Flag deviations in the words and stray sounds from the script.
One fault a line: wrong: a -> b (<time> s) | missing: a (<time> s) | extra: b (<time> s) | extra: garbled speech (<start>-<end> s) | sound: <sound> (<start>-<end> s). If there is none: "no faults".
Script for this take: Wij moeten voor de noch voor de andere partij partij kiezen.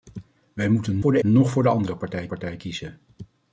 no faults